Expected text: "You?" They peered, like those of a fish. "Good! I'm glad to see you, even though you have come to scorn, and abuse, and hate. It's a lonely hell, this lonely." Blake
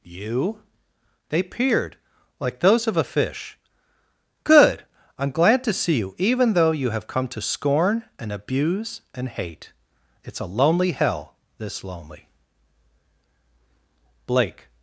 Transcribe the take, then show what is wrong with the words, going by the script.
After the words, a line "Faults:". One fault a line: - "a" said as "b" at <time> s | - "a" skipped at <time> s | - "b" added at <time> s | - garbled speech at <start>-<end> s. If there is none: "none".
"You?" They peered, like those of a fish. "Good! I'm glad to see you, even though you have come to scorn, and abuse, and hate. It's a lonely hell, this lonely." Blake
Faults:
none